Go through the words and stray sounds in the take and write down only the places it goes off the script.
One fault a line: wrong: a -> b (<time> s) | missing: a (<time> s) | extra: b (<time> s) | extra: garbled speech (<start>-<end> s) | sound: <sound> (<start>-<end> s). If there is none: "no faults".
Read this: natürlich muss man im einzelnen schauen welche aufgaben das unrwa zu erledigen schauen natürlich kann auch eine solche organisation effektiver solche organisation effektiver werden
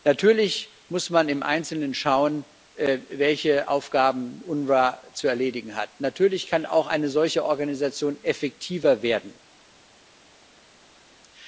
wrong: schauen -> hat (5.8 s)
missing: solche organisation effektiver (9.0 s)